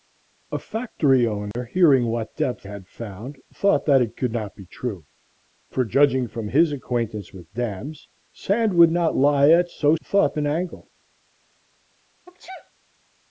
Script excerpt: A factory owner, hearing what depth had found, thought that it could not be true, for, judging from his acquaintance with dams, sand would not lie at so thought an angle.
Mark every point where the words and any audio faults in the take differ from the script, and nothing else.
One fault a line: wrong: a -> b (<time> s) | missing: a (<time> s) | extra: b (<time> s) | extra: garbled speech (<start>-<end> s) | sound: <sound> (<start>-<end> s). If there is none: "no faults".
sound: dropout (1.5-1.5 s)
sound: sneeze (12.3-12.7 s)